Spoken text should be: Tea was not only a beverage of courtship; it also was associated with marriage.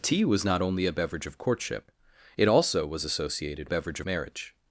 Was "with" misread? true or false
true